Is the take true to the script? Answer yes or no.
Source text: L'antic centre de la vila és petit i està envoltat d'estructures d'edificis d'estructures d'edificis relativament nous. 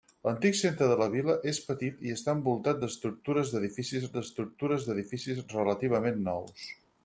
yes